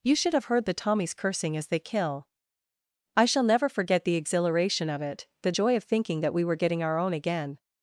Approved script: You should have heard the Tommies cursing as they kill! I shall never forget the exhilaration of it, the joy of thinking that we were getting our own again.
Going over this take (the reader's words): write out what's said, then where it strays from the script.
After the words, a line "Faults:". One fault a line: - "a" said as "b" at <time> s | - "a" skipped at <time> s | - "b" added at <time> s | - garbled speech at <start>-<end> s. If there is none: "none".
You should have heard the Tommies cursing as they kill! I shall never forget the exhilaration of it, the joy of thinking that we were getting our own again.
Faults:
none